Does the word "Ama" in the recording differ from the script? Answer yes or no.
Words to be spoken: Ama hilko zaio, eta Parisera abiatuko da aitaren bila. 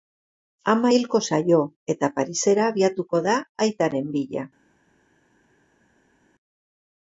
no